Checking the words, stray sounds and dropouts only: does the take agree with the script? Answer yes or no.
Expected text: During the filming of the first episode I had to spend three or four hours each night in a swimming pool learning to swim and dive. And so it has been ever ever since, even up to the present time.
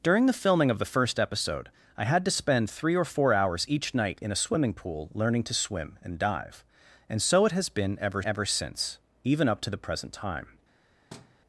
no